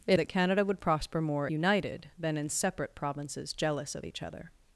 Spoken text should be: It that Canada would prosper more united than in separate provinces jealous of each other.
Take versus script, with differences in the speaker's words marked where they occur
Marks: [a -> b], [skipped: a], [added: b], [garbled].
It that Canada would prosper more united than in separate provinces jealous of each other.